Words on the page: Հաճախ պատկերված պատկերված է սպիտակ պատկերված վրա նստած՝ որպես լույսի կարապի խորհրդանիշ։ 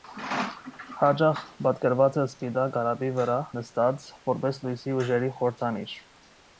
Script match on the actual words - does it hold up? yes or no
no